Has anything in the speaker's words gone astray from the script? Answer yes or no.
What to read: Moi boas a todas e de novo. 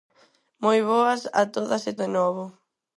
no